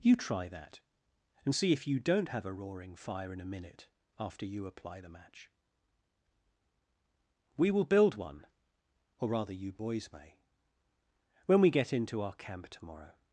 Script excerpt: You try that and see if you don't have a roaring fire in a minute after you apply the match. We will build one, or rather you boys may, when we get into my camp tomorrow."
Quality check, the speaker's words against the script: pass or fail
fail